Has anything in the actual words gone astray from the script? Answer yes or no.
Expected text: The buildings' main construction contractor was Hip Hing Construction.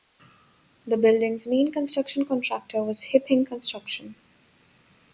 no